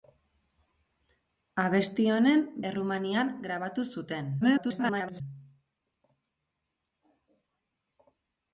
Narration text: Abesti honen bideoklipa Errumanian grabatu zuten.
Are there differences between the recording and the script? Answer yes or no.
yes